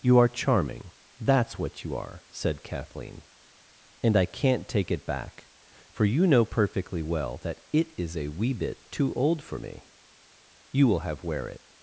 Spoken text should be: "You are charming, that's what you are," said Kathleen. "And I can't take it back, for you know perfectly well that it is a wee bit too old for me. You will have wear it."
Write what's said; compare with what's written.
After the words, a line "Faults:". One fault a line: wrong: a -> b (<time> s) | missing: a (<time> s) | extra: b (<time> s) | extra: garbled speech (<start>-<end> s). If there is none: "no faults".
"You are charming, that's what you are," said Kathleen. "And I can't take it back, for you know perfectly well that it is a wee bit too old for me. You will have wear it."
Faults:
no faults